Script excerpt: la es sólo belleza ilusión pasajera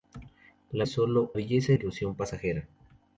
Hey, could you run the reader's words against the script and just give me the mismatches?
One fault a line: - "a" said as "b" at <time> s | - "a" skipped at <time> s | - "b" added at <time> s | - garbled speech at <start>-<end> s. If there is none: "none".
none